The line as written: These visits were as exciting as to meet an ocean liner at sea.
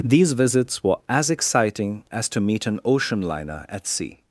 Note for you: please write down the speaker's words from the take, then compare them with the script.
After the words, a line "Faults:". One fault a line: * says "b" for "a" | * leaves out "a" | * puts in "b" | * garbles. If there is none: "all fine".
These visits were as exciting as to meet an ocean liner at sea.
Faults:
all fine